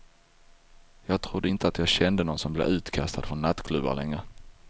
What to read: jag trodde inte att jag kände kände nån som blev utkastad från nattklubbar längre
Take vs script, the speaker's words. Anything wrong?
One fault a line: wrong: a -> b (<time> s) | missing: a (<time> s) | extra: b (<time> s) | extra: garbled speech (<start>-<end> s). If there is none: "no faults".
missing: kände (2.2 s)